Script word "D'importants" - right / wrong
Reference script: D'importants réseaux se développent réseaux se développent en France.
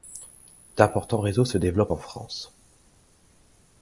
right